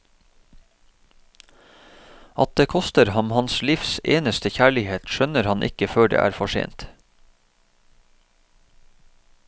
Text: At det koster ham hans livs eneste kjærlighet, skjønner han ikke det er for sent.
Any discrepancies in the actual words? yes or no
yes